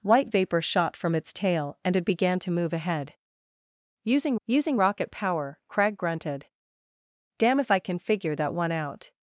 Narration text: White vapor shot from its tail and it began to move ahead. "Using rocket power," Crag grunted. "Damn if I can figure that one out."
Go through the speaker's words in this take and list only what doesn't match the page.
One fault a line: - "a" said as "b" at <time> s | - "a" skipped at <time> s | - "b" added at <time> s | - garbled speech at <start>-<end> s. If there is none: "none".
- "using" added at 4.5 s